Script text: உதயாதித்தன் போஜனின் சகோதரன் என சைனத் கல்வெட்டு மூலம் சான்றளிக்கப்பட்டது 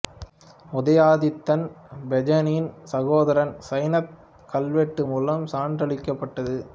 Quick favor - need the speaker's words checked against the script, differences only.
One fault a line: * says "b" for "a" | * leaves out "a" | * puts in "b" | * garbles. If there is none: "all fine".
* leaves out "என"